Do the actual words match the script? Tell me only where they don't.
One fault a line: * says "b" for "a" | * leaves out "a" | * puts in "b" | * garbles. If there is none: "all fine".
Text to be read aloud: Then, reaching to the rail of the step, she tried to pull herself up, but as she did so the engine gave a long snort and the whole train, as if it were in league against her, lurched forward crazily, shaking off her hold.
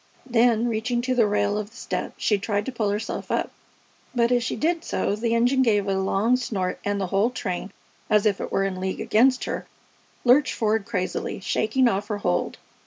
all fine